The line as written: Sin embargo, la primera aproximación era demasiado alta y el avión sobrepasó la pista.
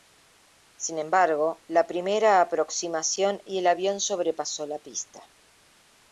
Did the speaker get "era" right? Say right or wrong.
wrong